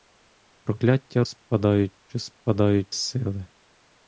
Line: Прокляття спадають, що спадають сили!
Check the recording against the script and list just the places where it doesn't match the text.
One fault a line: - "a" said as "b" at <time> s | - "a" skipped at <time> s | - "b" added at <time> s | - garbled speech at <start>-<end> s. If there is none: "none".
none